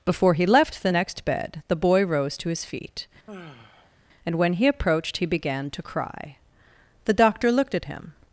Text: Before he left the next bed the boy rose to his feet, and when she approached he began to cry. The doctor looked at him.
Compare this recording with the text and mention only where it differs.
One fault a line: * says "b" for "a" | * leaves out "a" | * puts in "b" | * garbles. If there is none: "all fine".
* says "he" for "she"